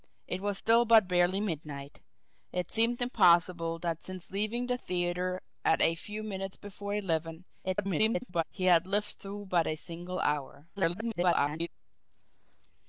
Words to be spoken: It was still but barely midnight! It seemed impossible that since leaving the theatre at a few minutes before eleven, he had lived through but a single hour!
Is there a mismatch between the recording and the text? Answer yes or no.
yes